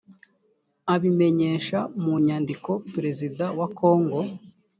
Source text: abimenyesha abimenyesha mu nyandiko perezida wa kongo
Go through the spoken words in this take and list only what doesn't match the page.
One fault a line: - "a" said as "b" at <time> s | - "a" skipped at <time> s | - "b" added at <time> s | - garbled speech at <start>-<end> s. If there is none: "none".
- "abimenyesha" skipped at 1.8 s